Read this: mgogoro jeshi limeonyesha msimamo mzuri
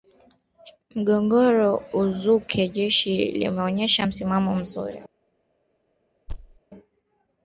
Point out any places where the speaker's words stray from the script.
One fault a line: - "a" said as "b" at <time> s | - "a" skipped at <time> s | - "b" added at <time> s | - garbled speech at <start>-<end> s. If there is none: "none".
- "uzuke" added at 1.9 s